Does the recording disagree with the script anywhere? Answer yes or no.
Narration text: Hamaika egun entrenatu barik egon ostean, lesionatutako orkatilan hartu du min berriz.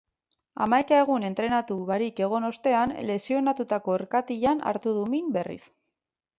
no